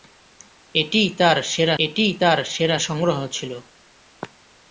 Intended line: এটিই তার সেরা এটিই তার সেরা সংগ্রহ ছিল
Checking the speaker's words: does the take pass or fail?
pass